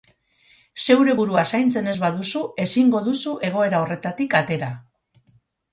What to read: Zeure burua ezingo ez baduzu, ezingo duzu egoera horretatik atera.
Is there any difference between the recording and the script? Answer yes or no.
yes